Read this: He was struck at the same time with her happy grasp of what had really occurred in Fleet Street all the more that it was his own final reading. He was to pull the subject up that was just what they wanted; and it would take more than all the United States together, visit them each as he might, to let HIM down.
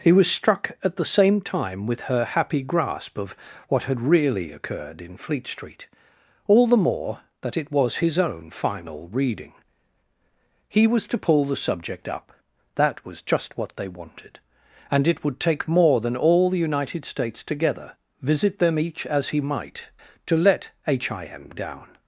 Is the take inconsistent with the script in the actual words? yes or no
no